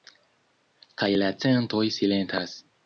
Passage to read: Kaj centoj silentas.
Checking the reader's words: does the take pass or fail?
fail